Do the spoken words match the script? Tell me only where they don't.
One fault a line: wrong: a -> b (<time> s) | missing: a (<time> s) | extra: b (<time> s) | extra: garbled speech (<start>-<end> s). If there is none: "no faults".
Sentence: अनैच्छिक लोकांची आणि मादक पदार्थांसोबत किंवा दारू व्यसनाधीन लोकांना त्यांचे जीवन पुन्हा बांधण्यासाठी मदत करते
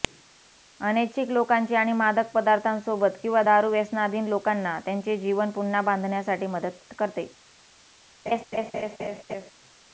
no faults